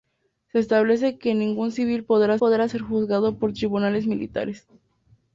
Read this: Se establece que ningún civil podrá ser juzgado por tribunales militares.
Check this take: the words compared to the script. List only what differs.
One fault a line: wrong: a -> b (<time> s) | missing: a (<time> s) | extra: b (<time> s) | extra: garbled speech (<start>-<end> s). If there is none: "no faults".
extra: podrá (2.4 s)